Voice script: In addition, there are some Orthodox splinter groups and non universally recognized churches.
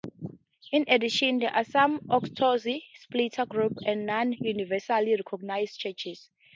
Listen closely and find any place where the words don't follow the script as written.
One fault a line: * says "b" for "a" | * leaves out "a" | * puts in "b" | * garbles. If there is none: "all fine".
all fine